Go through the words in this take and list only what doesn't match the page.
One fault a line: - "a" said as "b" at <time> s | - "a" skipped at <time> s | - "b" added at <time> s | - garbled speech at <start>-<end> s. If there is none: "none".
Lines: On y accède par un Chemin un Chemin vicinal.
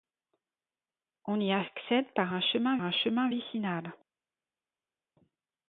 none